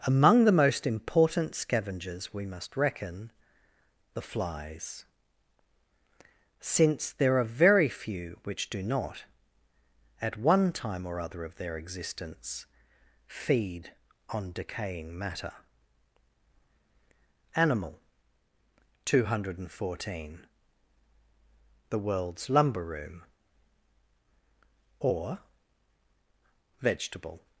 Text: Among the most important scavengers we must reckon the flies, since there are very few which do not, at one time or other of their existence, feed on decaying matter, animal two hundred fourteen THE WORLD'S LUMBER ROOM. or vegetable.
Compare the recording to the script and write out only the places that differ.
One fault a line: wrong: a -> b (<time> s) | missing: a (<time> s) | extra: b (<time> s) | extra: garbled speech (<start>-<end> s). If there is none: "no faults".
no faults